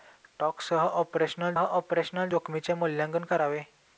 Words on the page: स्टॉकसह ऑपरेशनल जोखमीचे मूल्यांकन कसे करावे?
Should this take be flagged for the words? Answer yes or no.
yes